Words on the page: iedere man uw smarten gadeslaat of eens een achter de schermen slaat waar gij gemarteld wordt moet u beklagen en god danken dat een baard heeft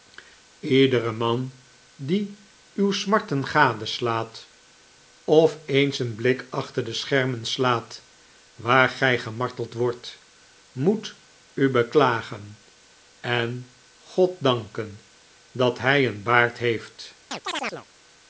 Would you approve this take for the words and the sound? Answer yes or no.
no